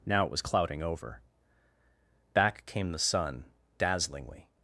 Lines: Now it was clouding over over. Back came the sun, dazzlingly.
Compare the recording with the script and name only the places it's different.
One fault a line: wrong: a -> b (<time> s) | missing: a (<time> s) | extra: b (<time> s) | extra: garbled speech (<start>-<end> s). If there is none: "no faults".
missing: over (1.2 s)